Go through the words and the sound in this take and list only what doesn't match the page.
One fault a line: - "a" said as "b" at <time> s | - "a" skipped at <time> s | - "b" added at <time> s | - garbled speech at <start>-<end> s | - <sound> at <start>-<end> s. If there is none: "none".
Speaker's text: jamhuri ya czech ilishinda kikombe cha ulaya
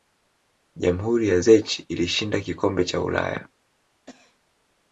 - cough at 4.1-4.4 s